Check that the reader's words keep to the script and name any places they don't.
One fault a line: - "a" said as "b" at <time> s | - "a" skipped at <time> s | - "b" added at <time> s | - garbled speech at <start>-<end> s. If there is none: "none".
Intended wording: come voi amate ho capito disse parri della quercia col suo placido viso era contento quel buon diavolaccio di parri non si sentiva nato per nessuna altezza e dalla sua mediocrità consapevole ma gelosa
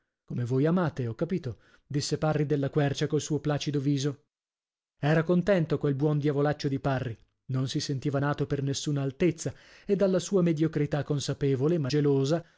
none